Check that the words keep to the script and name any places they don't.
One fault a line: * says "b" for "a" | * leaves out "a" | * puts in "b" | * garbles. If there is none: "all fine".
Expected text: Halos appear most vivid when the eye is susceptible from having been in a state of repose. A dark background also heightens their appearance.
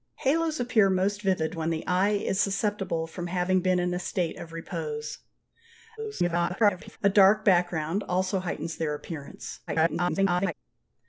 * garbles
* garbles